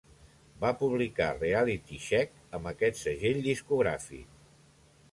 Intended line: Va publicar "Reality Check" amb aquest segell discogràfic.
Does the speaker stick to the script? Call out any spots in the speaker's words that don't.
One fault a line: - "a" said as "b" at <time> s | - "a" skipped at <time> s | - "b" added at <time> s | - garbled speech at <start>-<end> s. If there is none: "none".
none